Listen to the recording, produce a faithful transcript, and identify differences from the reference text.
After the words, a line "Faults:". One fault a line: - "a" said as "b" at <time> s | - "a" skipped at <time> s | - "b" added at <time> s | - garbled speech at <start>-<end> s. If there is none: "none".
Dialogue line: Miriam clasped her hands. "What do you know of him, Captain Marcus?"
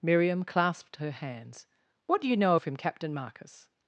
Miriam clasped her hands. "What do you know of him, Captain Marcus?"
Faults:
none